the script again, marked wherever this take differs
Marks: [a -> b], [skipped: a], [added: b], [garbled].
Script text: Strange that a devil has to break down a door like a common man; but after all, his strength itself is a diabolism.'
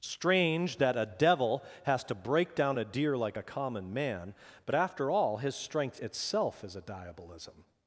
Strange that a devil has to break down a [door -> deer] like a common man; but after all, his strength itself is a diabolism.'